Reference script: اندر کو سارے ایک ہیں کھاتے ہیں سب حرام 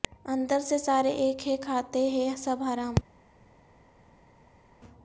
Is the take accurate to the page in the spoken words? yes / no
no